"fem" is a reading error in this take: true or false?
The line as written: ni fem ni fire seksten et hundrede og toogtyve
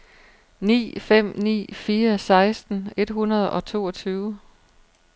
false